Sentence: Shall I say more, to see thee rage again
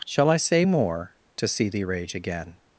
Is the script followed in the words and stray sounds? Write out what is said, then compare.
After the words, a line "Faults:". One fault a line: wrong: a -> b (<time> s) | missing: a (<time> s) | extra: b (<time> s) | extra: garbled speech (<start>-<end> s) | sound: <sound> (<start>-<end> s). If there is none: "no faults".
Shall I say more, to see thee rage again
Faults:
no faults